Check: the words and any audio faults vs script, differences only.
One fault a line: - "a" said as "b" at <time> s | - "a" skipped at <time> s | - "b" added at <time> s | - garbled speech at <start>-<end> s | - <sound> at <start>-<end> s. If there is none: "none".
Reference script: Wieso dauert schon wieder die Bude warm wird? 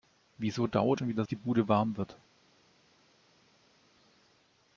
none